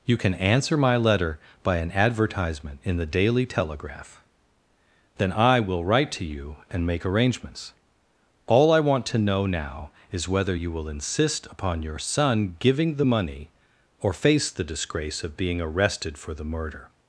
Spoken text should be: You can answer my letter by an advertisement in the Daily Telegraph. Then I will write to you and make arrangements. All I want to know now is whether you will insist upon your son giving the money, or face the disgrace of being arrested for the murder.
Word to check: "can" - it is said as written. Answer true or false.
true